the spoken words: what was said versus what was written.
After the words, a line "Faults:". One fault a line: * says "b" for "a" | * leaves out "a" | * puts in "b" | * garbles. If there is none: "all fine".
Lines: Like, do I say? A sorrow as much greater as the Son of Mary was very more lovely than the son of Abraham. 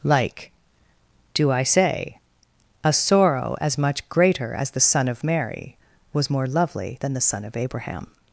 Like, do I say? A sorrow as much greater as the Son of Mary was more lovely than the son of Abraham.
Faults:
* leaves out "very"